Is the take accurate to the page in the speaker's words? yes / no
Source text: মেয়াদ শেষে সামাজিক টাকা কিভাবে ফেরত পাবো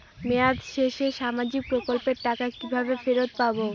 no